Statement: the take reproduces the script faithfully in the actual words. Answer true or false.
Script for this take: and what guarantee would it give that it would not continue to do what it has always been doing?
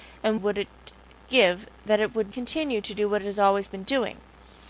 false